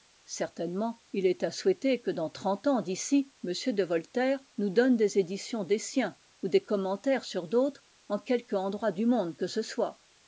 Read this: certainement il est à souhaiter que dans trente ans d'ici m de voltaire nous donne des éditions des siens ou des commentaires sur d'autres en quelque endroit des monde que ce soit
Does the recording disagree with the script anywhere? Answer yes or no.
yes